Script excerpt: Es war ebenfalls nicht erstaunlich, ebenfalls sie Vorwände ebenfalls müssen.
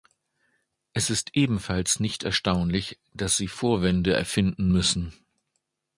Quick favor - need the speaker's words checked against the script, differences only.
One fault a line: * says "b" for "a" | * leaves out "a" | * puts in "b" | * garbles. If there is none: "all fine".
* says "ist" for "war"
* says "dass" for "ebenfalls"
* says "erfinden" for "ebenfalls"